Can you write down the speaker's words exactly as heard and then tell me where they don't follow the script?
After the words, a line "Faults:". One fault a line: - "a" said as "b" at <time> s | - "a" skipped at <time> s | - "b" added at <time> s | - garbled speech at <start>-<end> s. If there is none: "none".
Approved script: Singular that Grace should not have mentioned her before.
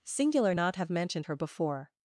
Singular not have mentioned her before.
Faults:
- "that Grace should" skipped at 0.6 s